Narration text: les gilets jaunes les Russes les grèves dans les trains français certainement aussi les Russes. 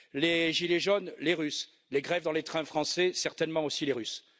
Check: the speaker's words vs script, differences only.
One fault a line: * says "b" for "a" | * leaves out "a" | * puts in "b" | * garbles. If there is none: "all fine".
all fine